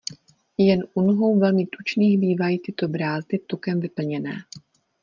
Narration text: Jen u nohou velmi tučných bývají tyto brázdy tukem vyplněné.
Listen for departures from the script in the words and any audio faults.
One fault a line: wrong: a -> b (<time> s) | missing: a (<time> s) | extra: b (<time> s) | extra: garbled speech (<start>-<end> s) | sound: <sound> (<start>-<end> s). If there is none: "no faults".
no faults